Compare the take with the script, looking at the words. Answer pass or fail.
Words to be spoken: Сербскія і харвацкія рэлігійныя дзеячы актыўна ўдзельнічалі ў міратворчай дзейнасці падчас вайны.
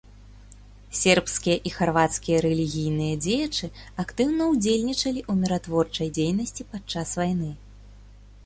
pass